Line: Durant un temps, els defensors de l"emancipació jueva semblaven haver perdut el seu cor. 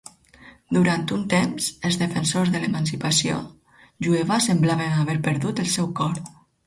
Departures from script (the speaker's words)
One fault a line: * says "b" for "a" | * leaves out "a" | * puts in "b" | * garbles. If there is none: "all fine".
all fine